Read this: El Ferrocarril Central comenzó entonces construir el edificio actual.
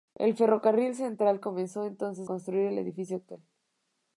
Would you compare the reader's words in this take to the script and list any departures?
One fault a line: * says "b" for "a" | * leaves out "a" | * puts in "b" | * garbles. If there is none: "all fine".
all fine